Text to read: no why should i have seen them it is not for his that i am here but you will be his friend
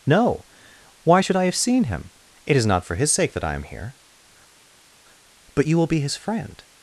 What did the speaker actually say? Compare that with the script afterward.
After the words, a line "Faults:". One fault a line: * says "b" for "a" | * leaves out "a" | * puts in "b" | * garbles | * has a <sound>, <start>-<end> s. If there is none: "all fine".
no why should i have seen him it is not for his sake that i am here but you will be his friend
Faults:
* says "him" for "them"
* puts in "sake"